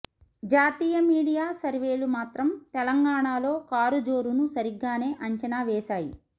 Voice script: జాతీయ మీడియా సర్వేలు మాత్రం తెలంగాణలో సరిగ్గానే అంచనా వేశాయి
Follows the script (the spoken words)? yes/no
no